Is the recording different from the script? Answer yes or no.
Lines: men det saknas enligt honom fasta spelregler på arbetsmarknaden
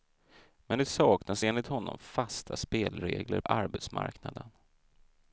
yes